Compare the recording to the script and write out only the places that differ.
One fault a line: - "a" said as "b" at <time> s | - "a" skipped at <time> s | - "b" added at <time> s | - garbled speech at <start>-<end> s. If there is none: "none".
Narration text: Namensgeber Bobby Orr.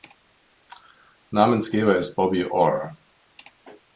- "ist" added at 1.9 s